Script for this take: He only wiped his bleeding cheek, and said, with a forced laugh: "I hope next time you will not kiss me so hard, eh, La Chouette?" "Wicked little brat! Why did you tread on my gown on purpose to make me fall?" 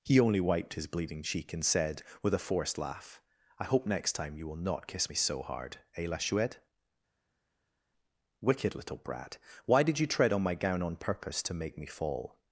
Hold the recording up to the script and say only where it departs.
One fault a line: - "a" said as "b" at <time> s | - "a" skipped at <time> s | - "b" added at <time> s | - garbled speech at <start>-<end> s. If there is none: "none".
none